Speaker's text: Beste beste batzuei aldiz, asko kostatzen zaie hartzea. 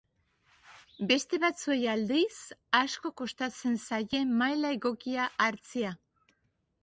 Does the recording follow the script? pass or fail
fail